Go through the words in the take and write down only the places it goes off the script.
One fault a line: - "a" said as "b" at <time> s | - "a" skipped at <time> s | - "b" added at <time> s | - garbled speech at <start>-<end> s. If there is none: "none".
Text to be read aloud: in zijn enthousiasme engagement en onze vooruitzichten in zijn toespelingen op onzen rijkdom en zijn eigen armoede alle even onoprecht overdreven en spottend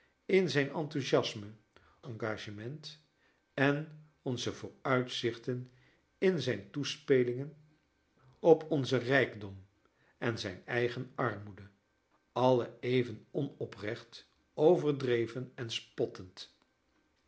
none